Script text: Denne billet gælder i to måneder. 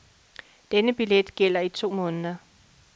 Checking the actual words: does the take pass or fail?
pass